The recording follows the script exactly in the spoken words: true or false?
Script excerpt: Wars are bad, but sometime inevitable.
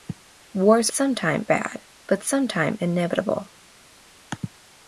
false